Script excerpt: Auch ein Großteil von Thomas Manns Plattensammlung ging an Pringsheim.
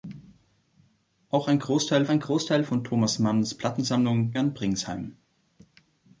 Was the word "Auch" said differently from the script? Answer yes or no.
no